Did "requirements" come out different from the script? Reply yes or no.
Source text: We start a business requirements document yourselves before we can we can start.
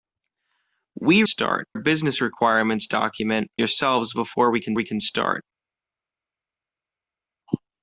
no